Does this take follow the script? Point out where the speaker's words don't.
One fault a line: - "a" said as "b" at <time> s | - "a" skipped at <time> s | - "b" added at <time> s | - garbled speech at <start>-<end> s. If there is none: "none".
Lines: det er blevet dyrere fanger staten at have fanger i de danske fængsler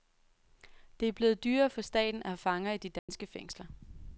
- "fanger" said as "for" at 1.7 s